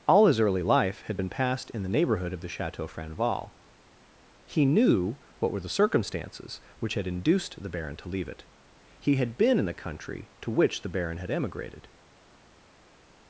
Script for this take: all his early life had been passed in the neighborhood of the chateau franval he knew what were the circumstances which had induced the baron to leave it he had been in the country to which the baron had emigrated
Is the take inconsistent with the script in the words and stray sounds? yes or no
no